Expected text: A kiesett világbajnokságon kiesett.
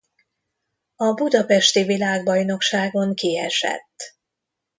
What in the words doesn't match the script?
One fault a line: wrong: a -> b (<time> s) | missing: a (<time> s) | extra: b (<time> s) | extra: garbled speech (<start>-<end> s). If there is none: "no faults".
wrong: kiesett -> budapesti (1.1 s)